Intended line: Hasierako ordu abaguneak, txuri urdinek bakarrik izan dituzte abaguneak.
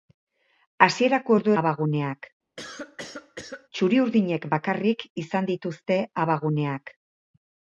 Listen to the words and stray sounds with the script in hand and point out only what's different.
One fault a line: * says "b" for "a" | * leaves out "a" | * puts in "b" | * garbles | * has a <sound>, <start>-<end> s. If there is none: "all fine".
* has a cough, 2.6-3.7 s